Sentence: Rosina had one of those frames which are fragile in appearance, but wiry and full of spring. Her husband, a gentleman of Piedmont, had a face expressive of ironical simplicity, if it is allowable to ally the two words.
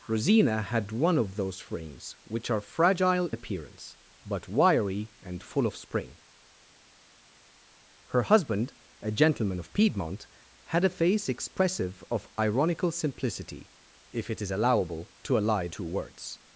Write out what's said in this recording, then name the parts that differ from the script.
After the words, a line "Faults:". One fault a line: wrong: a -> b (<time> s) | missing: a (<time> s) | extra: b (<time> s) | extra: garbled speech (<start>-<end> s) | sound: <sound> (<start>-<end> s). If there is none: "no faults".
Rosina had one of those frames which are fragile appearance, but wiry and full of spring. Her husband, a gentleman of Piedmont, had a face expressive of ironical simplicity, if it is allowable to ally two words.
Faults:
missing: in (3.3 s)
missing: the (15.7 s)